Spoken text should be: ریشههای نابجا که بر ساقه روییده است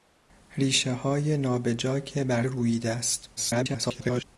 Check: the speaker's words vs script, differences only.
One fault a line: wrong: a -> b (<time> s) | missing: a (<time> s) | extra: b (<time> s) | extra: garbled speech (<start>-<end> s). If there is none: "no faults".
missing: ساقه (2.4 s)
extra: garbled speech (3.4-4.2 s)